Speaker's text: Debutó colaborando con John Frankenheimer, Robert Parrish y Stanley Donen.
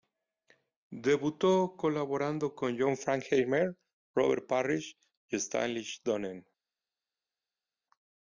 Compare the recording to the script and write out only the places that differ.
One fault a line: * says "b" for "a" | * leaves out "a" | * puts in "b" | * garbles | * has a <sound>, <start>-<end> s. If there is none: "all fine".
all fine